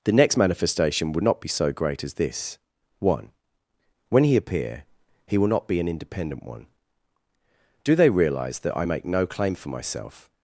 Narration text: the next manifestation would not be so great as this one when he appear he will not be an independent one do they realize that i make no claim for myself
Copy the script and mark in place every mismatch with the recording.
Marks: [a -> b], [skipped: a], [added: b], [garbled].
the next manifestation would not be so great as this one when he appear he will not be an independent one do they realize that i make no claim for myself